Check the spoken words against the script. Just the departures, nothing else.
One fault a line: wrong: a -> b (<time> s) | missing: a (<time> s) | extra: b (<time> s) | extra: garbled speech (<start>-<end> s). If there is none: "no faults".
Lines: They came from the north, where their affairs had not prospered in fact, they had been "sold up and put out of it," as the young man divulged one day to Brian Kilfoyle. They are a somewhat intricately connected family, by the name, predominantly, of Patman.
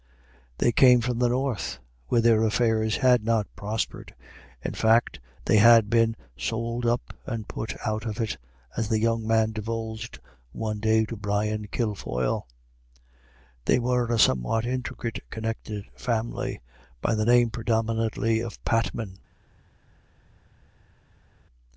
wrong: are -> were (13.8 s)